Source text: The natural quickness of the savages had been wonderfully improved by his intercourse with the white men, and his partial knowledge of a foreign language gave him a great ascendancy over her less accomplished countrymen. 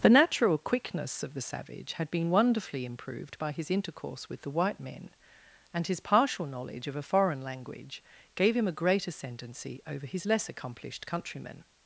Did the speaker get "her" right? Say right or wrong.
wrong